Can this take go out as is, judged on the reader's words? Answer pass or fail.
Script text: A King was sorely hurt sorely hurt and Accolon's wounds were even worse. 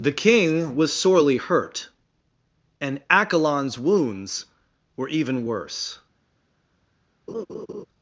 fail